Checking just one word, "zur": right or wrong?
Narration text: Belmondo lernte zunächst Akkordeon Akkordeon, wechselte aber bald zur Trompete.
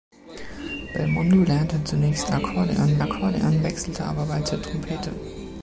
right